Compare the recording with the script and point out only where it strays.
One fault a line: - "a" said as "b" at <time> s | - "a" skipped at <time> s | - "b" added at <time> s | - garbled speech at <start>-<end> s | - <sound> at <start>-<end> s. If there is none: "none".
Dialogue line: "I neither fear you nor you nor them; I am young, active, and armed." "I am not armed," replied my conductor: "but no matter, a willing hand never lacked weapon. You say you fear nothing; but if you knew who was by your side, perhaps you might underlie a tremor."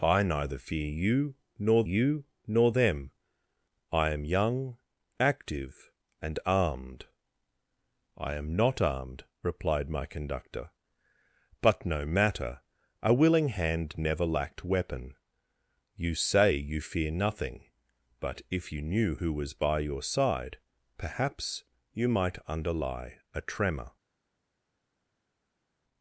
none